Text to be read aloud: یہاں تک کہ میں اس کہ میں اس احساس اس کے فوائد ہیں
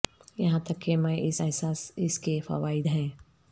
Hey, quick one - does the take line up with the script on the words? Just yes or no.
no